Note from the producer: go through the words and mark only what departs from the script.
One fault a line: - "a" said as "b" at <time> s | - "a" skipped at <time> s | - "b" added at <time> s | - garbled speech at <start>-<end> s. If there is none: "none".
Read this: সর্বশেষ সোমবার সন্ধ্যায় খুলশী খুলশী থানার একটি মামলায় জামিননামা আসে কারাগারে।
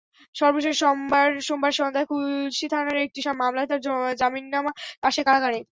- "খুলশী" skipped at 2.6 s
- "তাঁর" added at 3.7 s